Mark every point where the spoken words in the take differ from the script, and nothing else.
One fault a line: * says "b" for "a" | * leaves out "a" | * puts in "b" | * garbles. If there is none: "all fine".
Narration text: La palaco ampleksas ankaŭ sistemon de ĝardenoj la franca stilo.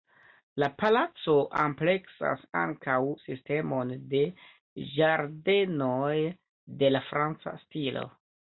* puts in "de"